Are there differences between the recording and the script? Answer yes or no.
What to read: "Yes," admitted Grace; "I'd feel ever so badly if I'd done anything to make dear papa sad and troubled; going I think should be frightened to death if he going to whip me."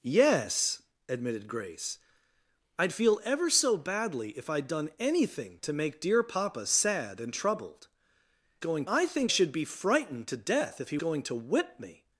no